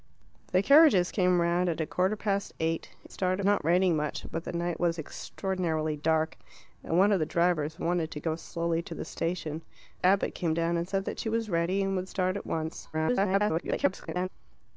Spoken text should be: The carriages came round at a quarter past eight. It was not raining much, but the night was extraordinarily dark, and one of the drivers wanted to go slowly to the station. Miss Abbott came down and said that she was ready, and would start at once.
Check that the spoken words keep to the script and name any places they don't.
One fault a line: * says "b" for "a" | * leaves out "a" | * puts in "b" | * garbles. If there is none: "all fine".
* says "start" for "was"
* leaves out "Miss"
* garbles